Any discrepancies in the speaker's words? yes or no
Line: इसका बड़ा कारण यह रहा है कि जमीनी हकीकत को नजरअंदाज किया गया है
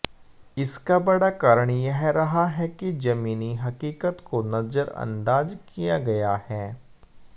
no